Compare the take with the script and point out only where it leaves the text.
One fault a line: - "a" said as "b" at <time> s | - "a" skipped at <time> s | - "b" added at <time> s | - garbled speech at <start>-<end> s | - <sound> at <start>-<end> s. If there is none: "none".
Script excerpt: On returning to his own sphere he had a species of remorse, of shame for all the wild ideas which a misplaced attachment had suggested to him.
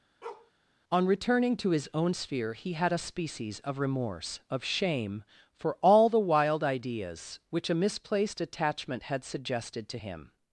- bark at 0.2-0.5 s